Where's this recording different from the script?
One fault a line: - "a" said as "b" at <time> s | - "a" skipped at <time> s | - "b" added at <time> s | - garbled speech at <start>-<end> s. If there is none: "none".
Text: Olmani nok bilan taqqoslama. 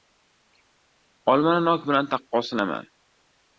none